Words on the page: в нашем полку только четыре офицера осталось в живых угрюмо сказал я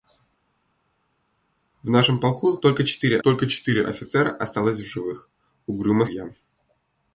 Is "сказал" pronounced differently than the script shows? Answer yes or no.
yes